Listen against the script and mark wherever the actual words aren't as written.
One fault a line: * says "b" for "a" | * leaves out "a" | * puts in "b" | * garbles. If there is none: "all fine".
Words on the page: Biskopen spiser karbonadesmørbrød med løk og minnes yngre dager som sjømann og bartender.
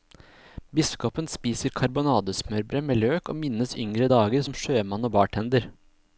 all fine